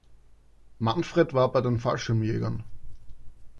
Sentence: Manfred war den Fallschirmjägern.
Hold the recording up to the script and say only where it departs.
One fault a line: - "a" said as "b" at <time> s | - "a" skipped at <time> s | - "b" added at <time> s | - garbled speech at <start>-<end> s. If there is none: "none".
- "bei" added at 1.5 s